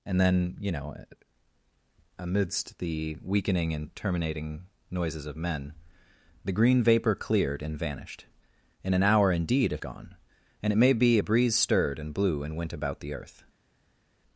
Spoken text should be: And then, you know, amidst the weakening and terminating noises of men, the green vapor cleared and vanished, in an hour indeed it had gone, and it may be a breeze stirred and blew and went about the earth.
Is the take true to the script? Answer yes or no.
no